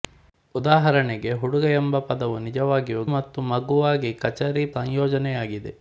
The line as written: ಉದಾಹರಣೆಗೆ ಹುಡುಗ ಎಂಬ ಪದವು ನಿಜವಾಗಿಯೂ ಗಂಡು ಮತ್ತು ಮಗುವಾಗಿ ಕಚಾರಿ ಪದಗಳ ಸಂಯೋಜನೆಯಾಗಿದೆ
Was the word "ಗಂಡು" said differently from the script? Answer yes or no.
yes